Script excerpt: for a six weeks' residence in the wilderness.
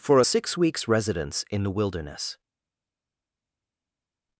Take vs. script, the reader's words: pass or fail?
pass